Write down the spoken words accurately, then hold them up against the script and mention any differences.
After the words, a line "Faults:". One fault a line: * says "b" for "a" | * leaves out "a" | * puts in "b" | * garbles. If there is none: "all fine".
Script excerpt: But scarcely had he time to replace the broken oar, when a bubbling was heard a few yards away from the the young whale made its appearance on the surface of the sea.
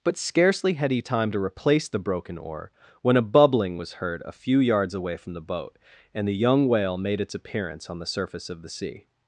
But scarcely had he time to replace the broken oar, when a bubbling was heard a few yards away from the boat, and the young whale made its appearance on the surface of the sea.
Faults:
* puts in "boat and"